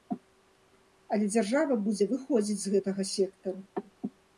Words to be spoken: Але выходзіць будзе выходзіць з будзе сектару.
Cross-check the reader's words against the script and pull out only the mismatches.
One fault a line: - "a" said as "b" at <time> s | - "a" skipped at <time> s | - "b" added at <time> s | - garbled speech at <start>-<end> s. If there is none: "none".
- "выходзіць" said as "дзяржава" at 1.4 s
- "будзе" said as "гэтага" at 2.7 s